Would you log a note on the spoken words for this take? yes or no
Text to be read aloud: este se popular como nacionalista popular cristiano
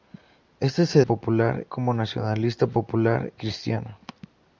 no